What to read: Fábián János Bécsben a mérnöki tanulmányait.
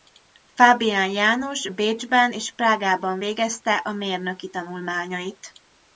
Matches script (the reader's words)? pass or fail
fail